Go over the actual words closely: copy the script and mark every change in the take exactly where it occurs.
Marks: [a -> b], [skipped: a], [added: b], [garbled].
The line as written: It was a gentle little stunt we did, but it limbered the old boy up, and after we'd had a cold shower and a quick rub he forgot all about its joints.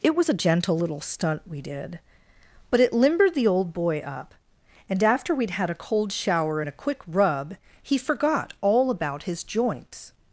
It was a gentle little stunt we did, but it limbered the old boy up, and after we'd had a cold shower and a quick rub he forgot all about [its -> his] joints.